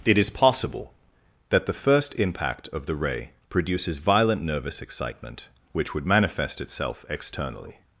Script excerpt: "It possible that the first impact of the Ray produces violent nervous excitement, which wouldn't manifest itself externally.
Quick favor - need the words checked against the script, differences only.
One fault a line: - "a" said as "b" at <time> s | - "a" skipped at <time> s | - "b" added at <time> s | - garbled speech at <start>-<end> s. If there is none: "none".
- "is" added at 0.2 s
- "wouldn't" said as "would" at 5.9 s